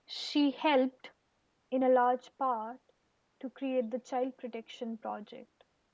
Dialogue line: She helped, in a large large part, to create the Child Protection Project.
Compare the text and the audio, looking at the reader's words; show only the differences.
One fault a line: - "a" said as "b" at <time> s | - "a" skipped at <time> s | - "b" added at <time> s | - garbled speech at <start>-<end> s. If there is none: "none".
- "large" skipped at 2.4 s